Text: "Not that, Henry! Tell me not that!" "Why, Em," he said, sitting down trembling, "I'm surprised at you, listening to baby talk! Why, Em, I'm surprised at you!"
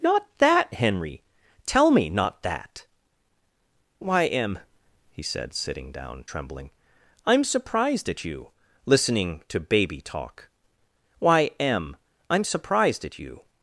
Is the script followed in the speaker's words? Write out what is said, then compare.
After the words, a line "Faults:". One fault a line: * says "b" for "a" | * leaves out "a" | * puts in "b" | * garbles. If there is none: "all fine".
"Not that, Henry! Tell me not that!" "Why, Em," he said, sitting down trembling, "I'm surprised at you, listening to baby talk! Why, Em, I'm surprised at you!"
Faults:
all fine